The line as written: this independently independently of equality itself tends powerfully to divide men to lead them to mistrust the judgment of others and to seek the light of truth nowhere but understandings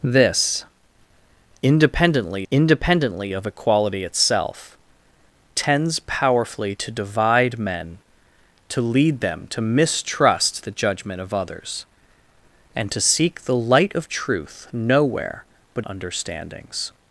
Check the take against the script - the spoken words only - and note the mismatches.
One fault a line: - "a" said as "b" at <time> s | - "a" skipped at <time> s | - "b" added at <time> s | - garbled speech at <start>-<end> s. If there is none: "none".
none